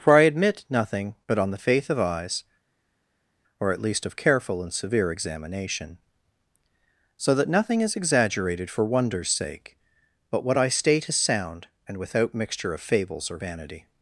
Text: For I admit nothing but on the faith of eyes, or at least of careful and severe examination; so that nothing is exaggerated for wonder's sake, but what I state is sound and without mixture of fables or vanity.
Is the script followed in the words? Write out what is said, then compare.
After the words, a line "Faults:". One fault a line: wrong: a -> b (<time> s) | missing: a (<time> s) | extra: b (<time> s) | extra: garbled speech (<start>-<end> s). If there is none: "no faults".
For I admit nothing but on the faith of eyes, or at least of careful and severe examination; so that nothing is exaggerated for wonder's sake, but what I state is sound and without mixture of fables or vanity.
Faults:
no faults